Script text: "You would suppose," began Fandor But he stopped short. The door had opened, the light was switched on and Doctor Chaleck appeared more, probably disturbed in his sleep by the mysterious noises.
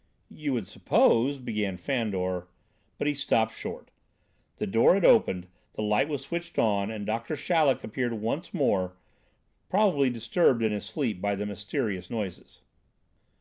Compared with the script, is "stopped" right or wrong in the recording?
right